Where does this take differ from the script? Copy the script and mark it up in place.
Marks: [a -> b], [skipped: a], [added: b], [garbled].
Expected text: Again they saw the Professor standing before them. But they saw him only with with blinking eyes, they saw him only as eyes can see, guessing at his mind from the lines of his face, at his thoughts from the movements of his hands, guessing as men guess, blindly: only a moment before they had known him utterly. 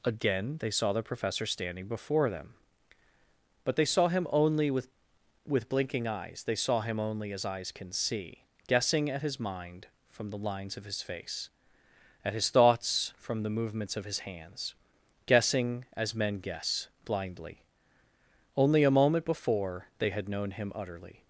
Again they saw the Professor standing before them. But they saw him only with with blinking eyes, they saw him only as eyes can see, guessing at his mind from the lines of his face, at his thoughts from the movements of his hands, guessing as men guess, blindly: only a moment before they had known him utterly.